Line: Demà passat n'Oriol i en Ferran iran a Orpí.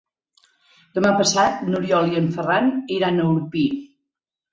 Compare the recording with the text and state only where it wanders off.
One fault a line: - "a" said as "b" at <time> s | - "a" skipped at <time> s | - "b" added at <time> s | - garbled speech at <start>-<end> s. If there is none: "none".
none